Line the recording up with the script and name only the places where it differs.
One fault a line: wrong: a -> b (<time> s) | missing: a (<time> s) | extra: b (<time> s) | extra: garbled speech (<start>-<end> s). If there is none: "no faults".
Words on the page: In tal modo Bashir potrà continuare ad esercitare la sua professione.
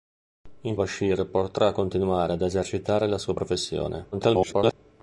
missing: tal modo (0.8 s)
extra: garbled speech (4.1-4.7 s)